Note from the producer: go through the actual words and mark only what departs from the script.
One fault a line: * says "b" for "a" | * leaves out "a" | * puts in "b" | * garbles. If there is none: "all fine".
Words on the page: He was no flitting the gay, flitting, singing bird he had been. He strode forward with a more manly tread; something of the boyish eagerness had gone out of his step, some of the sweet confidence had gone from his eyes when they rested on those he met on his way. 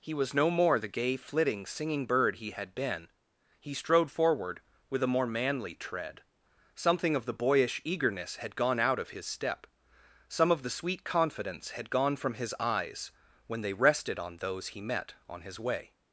* says "more" for "flitting"